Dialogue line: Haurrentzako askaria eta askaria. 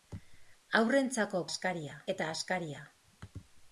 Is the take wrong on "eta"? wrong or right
right